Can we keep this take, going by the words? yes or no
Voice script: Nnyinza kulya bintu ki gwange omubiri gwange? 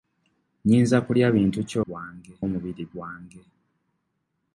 yes